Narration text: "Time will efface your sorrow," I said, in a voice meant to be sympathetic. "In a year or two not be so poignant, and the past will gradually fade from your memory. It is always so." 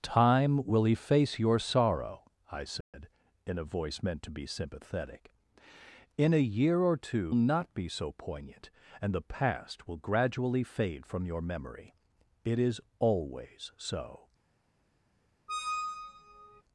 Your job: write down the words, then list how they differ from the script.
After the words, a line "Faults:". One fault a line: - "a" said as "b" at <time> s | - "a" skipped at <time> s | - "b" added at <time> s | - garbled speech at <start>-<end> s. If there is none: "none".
"Time will efface your sorrow," I said, in a voice meant to be sympathetic. "In a year or two not be so poignant, and the past will gradually fade from your memory. It is always so."
Faults:
none